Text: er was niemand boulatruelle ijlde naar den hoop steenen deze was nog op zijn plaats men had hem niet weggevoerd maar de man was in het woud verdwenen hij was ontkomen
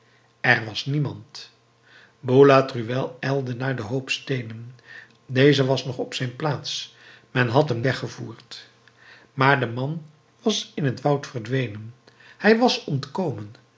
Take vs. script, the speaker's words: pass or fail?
fail